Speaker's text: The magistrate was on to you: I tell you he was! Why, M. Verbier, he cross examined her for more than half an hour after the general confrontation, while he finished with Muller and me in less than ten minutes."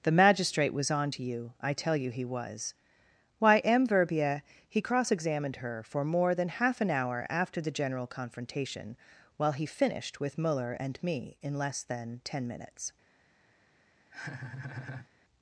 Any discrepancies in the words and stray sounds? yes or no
yes